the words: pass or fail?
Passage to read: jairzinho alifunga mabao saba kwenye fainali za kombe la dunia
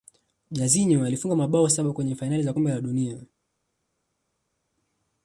pass